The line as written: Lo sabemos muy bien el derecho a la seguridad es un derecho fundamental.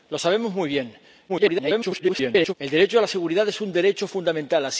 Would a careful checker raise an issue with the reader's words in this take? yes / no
yes